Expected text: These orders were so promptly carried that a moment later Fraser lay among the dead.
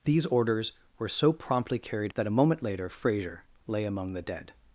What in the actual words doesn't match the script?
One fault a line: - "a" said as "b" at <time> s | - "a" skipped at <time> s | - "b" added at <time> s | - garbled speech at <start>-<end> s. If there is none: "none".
none